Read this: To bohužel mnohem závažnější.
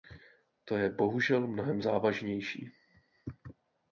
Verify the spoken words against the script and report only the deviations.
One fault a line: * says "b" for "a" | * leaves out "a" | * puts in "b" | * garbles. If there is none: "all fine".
* puts in "je"